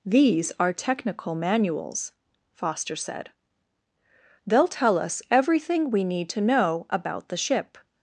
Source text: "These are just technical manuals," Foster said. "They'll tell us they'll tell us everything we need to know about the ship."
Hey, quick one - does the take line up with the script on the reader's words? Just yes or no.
no